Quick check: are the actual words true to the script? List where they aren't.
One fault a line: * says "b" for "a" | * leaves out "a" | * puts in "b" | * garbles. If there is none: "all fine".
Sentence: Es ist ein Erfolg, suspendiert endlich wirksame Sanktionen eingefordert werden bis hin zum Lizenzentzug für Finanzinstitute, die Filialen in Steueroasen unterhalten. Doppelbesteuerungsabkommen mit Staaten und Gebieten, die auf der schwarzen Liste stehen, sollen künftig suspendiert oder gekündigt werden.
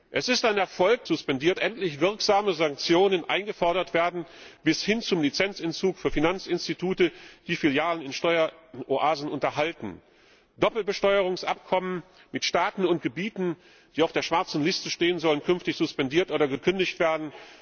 all fine